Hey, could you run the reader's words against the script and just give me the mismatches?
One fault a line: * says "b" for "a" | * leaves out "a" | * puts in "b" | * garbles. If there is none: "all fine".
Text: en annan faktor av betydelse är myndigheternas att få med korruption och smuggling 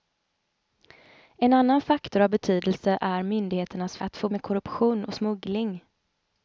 all fine